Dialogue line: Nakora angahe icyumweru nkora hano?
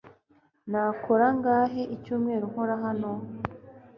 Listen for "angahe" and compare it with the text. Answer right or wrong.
right